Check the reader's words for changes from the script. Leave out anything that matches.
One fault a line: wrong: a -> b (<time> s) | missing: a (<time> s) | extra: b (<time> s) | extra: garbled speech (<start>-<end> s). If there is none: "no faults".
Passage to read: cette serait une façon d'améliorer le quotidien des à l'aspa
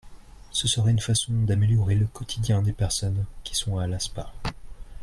wrong: cette -> ce (0.5 s)
extra: personnes qui sont (2.7 s)